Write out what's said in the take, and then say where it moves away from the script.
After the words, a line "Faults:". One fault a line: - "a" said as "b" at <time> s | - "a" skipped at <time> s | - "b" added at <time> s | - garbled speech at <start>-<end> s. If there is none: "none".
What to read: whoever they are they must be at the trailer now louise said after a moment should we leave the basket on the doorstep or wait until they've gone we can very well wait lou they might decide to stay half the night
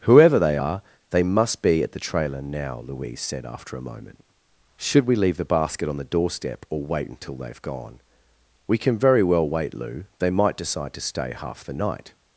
whoever they are they must be at the trailer now louise said after a moment should we leave the basket on the doorstep or wait until they've gone we can very well wait lou they might decide to stay half the night
Faults:
none